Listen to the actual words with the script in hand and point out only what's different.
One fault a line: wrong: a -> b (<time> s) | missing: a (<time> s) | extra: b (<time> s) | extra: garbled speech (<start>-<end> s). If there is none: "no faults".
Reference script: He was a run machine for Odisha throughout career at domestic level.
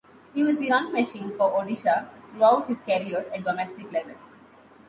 wrong: a -> the (0.6 s)
extra: his (2.7 s)